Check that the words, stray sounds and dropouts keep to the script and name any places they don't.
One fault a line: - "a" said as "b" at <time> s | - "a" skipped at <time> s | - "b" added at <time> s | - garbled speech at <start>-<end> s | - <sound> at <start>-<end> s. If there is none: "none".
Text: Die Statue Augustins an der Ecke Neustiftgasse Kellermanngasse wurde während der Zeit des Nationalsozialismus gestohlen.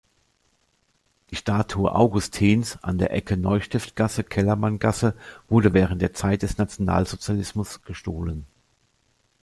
none